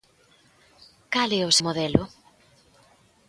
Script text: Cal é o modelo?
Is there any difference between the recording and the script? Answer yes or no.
no